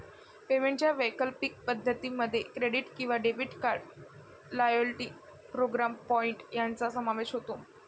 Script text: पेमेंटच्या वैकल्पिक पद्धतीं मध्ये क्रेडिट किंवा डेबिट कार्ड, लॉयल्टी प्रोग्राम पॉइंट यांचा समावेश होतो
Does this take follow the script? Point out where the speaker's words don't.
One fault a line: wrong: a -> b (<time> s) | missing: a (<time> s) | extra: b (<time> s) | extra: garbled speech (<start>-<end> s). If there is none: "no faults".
no faults